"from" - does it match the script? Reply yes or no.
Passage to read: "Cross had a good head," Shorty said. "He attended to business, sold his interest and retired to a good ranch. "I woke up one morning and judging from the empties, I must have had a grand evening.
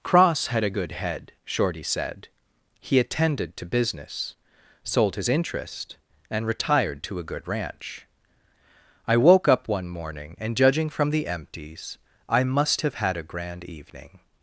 yes